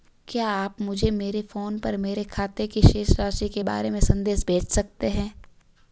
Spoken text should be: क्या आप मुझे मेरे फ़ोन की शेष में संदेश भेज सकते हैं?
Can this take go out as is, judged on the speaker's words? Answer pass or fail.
fail